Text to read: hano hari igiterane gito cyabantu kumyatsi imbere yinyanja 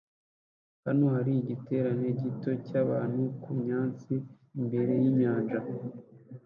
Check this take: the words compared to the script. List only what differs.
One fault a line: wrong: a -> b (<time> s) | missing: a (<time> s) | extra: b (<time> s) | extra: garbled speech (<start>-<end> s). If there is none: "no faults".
no faults